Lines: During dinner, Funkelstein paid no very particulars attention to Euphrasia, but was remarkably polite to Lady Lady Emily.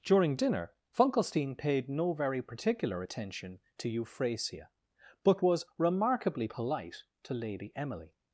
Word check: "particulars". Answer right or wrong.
wrong